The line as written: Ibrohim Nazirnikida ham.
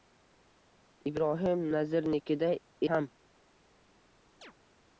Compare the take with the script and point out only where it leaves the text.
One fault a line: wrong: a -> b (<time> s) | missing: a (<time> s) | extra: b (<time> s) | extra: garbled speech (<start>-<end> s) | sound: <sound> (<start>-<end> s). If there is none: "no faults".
sound: chirp (4.4-4.5 s)